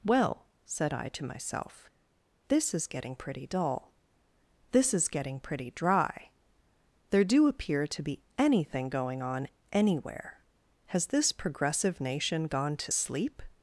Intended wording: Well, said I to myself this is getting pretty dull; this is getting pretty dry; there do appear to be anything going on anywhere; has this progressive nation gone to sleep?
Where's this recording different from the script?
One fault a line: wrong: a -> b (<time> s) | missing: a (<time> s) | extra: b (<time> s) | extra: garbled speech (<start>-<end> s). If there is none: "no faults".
no faults